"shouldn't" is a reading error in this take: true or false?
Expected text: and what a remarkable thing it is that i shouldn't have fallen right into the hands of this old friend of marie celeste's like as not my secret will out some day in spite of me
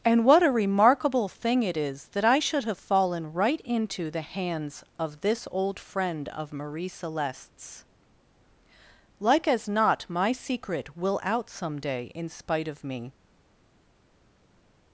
true